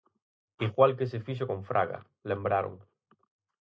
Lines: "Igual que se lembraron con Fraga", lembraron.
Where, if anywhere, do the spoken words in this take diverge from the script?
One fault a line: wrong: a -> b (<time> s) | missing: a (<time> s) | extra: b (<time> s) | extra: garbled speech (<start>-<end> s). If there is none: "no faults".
wrong: lembraron -> fixo (1.3 s)